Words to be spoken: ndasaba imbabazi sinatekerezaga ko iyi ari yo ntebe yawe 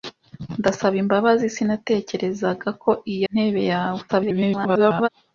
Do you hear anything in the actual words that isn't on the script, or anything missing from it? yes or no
yes